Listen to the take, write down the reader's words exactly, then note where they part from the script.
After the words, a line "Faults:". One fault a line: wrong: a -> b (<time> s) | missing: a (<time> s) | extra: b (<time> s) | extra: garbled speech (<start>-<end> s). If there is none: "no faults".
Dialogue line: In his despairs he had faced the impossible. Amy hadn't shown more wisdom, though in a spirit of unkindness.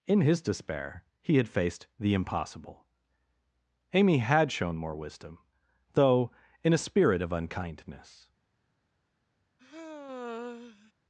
In his despair he had faced the impossible. Amy had shown more wisdom, though in a spirit of unkindness.
Faults:
wrong: despairs -> despair (0.4 s)
wrong: hadn't -> had (4.2 s)